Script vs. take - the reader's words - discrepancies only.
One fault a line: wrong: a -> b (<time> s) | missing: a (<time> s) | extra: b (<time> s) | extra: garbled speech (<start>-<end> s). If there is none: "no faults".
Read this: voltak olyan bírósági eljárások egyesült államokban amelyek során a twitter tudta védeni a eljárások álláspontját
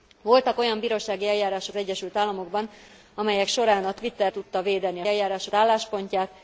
no faults